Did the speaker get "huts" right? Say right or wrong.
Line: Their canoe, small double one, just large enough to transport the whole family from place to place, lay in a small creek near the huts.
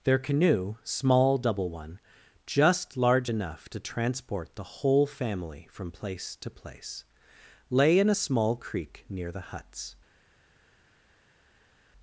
right